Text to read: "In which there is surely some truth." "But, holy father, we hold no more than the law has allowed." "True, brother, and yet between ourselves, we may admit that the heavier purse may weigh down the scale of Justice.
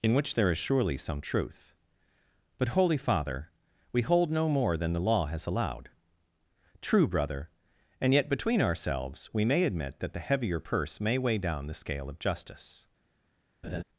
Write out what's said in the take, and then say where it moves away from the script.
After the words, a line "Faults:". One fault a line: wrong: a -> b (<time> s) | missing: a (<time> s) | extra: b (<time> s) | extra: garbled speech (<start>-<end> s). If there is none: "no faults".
"In which there is surely some truth." "But, holy father, we hold no more than the law has allowed." "True, brother, and yet between ourselves, we may admit that the heavier purse may weigh down the scale of Justice.
Faults:
no faults